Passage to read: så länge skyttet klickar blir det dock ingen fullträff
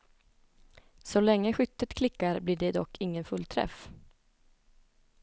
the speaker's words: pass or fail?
pass